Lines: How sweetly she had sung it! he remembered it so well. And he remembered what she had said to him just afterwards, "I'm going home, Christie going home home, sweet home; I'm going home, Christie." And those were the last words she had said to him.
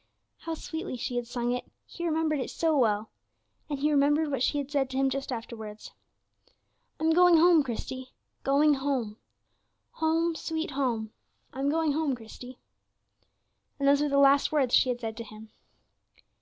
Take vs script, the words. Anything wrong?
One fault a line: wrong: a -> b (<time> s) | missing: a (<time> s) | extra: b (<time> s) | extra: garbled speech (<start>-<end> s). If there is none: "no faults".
no faults